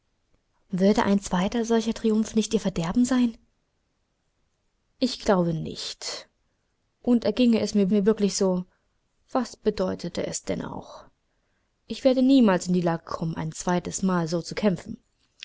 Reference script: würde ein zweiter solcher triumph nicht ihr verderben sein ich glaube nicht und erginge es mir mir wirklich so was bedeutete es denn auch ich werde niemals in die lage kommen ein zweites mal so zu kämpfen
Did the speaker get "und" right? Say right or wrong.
right